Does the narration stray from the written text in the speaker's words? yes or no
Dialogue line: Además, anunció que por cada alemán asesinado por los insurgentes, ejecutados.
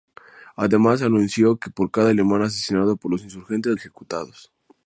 no